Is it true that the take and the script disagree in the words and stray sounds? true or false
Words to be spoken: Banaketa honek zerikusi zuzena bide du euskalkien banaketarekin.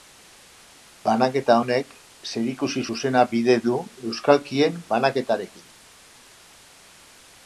false